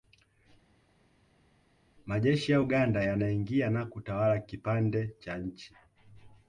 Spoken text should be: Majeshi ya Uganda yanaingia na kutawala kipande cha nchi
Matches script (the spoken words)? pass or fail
pass